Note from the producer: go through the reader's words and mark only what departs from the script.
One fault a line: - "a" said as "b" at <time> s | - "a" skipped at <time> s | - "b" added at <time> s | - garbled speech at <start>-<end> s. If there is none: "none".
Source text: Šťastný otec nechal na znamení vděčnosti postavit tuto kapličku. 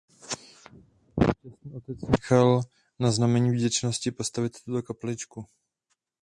none